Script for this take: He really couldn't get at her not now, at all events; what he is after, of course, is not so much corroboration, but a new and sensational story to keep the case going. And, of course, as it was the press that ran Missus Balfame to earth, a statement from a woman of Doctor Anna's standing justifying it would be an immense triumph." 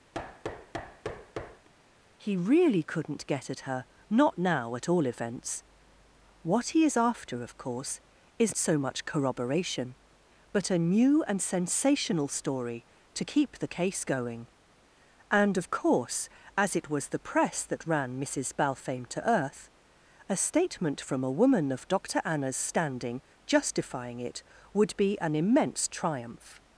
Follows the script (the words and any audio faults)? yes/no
no